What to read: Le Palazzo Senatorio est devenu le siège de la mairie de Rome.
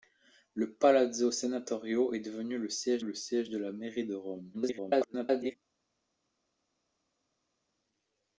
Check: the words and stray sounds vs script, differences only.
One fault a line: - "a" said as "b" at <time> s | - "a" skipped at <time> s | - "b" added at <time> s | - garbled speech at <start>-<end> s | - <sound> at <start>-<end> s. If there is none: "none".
- "le siège" added at 3.0 s
- garbled speech at 4.5-5.6 s